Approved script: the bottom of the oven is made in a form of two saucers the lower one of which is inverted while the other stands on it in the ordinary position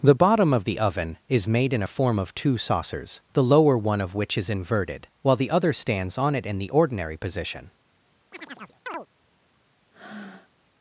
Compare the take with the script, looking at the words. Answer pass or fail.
pass